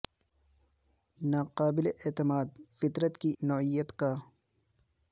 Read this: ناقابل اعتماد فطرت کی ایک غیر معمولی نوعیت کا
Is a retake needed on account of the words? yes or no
yes